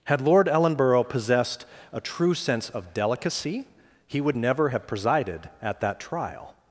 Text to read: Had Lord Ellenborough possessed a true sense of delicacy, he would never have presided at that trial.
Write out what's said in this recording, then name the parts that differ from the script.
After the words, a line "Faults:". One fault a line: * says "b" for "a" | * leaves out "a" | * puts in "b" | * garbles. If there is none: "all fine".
Had Lord Ellenborough possessed a true sense of delicacy, he would never have presided at that trial.
Faults:
all fine